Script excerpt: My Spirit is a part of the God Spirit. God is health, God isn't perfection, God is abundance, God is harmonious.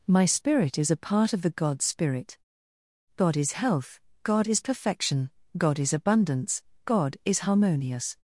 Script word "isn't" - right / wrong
wrong